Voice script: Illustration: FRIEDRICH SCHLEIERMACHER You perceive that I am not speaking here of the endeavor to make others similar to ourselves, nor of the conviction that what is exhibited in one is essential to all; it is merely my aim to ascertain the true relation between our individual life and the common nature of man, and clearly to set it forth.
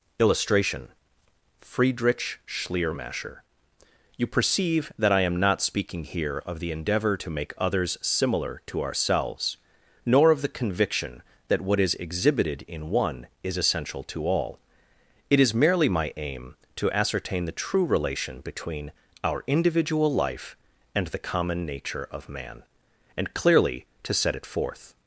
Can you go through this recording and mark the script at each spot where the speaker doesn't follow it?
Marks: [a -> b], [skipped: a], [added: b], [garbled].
Illustration: FRIEDRICH SCHLEIERMACHER You perceive that I am not speaking here of the endeavor to make others similar to ourselves, nor of the conviction that what is exhibited in one is essential to all; it is merely my aim to ascertain the true relation between our individual life and the common nature of man, and clearly to set it forth.